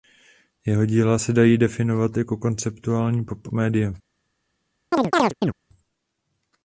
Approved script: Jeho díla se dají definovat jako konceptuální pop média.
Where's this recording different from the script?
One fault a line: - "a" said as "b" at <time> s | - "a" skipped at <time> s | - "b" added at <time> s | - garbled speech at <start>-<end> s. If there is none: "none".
none